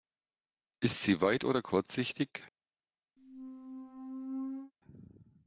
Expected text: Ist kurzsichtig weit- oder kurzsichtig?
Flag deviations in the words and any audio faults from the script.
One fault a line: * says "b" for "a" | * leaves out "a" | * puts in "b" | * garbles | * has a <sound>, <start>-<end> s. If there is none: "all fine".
* says "sie" for "kurzsichtig"
* has a squeak, 3.2-4.7 s